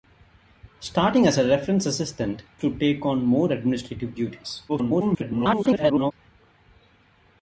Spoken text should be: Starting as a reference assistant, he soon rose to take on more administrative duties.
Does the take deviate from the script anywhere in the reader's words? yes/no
yes